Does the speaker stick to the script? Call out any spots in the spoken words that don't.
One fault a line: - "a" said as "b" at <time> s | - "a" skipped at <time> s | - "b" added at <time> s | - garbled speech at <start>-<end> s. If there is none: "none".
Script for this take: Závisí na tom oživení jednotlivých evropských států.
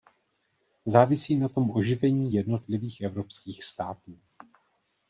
none